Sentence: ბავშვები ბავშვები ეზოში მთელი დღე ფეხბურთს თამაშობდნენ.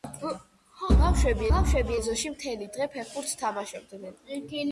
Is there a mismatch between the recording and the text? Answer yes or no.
no